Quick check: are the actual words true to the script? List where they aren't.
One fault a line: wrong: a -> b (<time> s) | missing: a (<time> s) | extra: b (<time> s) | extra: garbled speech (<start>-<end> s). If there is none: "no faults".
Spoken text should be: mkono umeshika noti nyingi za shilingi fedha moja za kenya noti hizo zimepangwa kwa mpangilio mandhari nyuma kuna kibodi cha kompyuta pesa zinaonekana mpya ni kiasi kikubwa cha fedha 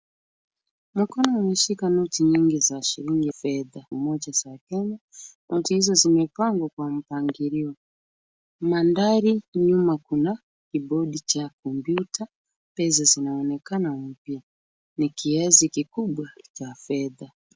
no faults